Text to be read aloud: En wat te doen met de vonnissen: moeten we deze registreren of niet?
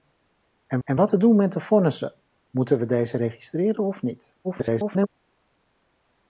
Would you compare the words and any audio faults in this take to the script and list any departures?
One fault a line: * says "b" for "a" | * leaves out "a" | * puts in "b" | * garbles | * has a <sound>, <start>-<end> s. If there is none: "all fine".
* puts in "en"
* garbles